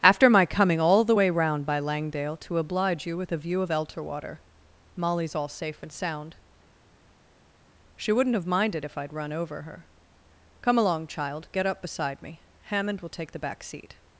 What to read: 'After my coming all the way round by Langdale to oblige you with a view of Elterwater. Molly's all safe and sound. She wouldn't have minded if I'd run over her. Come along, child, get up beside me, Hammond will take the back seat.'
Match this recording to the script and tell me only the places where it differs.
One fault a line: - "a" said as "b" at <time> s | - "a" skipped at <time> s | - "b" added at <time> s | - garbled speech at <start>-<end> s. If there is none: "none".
none